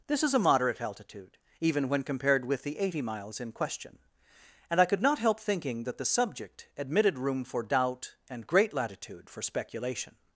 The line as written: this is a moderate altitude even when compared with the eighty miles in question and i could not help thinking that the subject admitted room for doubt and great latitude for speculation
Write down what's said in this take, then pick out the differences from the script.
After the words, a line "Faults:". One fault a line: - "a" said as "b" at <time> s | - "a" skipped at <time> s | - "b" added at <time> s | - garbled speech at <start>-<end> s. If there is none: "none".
this is a moderate altitude even when compared with the eighty miles in question and i could not help thinking that the subject admitted room for doubt and great latitude for speculation
Faults:
none